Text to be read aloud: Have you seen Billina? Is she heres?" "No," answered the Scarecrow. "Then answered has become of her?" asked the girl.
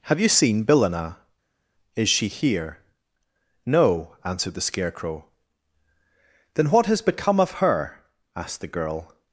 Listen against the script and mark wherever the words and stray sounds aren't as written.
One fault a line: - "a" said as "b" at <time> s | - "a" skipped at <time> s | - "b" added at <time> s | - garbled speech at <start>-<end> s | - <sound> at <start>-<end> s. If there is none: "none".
- "heres" said as "here" at 2.3 s
- "answered" said as "what" at 6.7 s